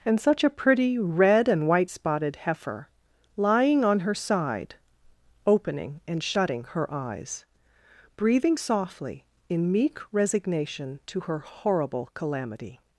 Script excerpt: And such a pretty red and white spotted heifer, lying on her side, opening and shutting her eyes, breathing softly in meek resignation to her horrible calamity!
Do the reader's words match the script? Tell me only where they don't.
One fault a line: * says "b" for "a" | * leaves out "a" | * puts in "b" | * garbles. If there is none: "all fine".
all fine